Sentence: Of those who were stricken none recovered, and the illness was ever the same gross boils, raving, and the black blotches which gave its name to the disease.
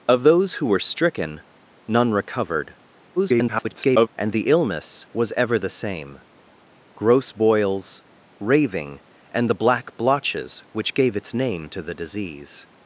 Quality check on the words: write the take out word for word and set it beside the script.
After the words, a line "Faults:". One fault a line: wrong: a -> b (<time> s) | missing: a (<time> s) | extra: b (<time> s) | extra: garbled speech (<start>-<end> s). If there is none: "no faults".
Of those who were stricken none recovered, [garbled] and the illness was ever the same gross boils, raving, and the black blotches which gave its name to the disease.
Faults:
extra: garbled speech (3.2-4.1 s)